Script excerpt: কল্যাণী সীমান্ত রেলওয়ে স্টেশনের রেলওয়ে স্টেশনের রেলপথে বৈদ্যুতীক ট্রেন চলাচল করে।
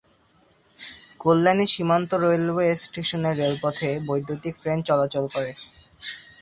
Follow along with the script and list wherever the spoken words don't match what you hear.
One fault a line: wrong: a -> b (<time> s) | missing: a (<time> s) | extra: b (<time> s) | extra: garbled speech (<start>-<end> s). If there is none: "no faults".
missing: রেলওয়ে স্টেশনের (3.4 s)